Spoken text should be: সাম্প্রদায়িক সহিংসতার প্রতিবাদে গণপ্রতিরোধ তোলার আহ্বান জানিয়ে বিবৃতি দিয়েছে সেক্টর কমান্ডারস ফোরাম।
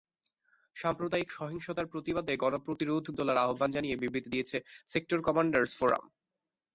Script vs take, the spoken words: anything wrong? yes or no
no